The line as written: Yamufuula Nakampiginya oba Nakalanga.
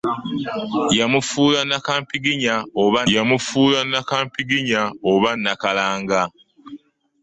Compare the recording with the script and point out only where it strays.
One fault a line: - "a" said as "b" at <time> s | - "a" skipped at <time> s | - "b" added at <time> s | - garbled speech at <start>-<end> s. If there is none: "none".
- "yamufuula Nakampiginya oba" added at 3.2 s